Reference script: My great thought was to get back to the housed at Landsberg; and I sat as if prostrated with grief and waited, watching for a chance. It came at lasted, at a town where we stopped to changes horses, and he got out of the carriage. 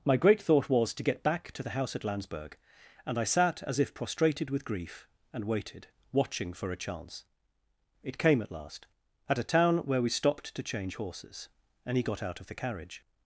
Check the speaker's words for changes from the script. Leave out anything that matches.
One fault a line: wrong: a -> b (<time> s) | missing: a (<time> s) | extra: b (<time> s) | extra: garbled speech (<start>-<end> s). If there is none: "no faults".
wrong: housed -> house (1.7 s)
wrong: lasted -> last (8.5 s)
wrong: changes -> change (10.6 s)